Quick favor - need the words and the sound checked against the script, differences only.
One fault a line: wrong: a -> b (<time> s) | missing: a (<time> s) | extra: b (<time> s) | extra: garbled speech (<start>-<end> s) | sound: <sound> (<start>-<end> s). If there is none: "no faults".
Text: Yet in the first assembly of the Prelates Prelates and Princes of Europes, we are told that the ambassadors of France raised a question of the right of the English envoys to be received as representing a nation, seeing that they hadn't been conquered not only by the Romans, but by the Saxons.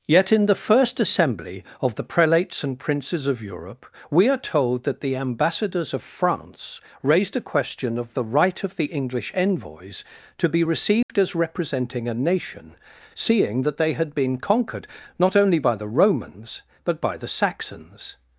missing: Prelates (2.6 s)
wrong: Europes -> Europe (3.4 s)
sound: dropout (11.0-11.1 s)
wrong: hadn't -> had (13.9 s)